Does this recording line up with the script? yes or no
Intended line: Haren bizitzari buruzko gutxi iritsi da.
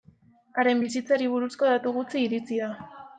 no